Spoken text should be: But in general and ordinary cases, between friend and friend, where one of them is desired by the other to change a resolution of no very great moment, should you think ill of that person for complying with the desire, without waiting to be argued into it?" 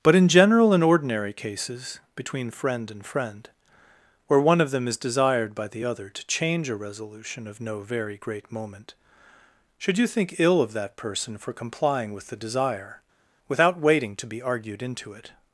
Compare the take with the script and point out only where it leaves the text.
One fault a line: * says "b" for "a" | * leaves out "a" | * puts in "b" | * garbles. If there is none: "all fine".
all fine